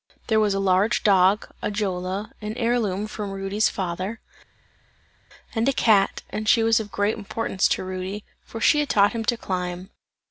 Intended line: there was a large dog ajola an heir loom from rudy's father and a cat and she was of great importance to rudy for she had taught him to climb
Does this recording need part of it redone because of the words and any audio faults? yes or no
no